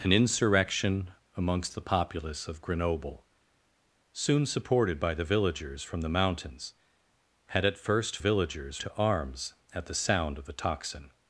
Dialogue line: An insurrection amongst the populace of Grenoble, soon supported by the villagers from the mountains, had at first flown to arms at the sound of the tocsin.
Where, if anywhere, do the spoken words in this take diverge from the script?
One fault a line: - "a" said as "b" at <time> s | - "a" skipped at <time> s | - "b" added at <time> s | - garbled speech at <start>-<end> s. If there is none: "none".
- "flown" said as "villagers" at 8.2 s